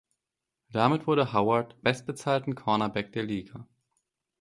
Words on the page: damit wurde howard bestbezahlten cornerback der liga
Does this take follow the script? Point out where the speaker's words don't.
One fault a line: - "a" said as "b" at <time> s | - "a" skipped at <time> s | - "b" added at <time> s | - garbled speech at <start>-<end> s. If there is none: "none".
none